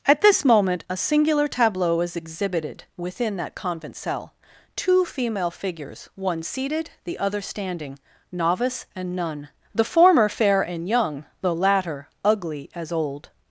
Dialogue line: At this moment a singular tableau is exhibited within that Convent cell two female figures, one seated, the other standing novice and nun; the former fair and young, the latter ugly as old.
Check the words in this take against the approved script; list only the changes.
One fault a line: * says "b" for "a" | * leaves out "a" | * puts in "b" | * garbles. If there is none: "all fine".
all fine